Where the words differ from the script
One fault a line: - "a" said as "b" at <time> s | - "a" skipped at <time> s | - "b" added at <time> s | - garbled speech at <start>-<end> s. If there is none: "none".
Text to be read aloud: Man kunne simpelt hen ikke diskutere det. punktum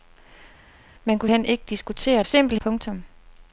- "simpelt" skipped at 1.3 s
- "det" said as "simpelt" at 2.2 s